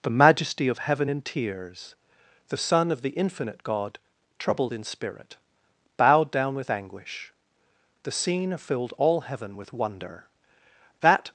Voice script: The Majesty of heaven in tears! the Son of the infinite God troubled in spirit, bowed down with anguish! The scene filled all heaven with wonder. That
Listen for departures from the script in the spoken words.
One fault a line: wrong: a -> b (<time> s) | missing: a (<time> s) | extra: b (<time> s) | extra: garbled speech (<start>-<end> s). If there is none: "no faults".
no faults